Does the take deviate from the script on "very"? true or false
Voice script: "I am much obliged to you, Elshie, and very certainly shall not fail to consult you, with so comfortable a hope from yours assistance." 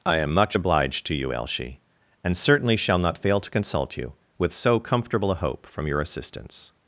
true